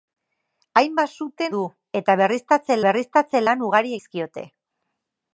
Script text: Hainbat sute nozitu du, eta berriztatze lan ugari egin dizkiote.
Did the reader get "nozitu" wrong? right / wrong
wrong